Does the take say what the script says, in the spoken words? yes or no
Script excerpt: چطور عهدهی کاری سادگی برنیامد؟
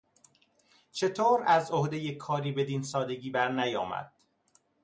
no